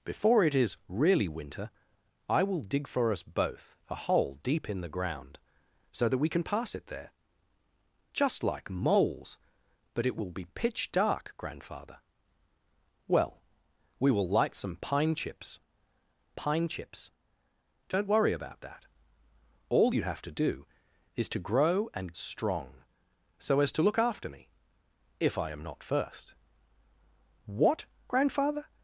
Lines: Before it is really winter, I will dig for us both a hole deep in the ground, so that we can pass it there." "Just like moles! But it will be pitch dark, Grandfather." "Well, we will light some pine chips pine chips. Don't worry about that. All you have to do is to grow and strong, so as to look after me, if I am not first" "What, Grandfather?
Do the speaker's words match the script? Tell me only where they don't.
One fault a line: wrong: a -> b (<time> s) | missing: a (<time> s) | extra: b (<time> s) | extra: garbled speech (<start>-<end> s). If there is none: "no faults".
no faults